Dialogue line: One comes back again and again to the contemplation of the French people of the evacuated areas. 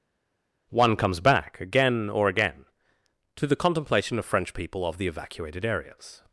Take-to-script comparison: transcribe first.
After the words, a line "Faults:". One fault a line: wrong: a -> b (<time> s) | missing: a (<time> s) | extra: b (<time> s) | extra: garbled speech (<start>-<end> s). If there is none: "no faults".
One comes back again or again to the contemplation of French people of the evacuated areas.
Faults:
wrong: and -> or (2.1 s)
missing: the (4.2 s)